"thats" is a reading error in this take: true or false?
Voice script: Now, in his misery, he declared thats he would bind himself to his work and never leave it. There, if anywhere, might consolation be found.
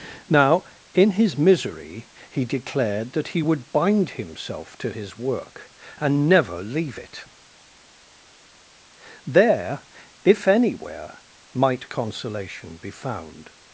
true